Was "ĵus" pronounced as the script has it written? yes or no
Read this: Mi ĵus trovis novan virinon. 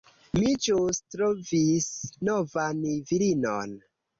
yes